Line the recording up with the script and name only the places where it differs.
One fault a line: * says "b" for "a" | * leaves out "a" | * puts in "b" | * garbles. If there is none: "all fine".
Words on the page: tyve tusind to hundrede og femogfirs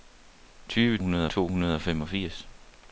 * says "hundrede" for "tusind"